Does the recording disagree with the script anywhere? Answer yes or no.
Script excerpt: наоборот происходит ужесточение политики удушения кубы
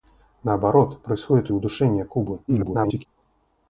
yes